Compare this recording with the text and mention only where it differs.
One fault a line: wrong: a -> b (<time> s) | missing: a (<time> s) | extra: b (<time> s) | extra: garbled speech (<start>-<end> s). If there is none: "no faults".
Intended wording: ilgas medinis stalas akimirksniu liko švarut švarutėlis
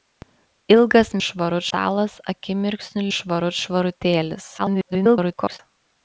wrong: medinis -> švarut (1.3 s)
missing: liko (3.1 s)
extra: garbled speech (4.6-5.6 s)